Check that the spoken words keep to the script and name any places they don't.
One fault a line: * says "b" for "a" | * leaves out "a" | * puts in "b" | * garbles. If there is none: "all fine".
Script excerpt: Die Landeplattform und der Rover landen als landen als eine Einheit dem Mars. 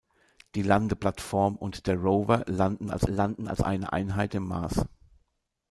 all fine